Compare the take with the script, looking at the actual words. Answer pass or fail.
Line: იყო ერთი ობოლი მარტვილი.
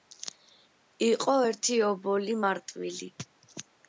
pass